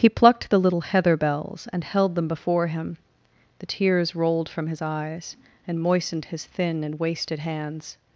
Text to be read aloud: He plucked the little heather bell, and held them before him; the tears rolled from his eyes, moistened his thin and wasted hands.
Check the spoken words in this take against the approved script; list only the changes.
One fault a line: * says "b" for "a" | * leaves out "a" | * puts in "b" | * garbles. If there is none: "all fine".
* says "bells" for "bell"
* puts in "and"